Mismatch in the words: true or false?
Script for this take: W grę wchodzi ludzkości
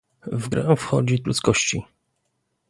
false